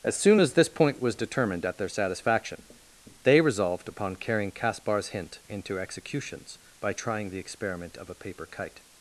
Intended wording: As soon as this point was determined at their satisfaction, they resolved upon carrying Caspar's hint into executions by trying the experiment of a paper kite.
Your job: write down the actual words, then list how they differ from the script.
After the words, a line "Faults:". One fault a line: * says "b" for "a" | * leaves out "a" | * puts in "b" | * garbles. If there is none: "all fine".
As soon as this point was determined at their satisfaction, they resolved upon carrying Caspar's hint into executions by trying the experiment of a paper kite.
Faults:
all fine